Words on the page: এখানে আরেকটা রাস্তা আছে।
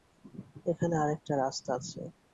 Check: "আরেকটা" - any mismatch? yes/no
no